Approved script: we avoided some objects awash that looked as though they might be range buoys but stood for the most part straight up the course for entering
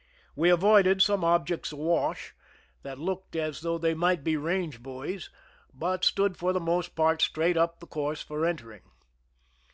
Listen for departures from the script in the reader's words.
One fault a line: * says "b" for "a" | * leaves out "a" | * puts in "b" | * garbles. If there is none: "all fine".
all fine